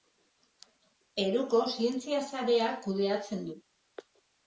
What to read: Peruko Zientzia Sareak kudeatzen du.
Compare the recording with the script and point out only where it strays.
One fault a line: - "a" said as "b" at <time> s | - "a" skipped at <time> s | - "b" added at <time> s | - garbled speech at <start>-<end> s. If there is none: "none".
none